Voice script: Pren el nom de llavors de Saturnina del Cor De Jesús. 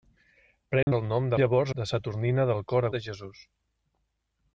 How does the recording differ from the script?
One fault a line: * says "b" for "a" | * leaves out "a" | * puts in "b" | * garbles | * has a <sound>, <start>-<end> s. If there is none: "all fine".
* has a dropout, 0.8-0.9 s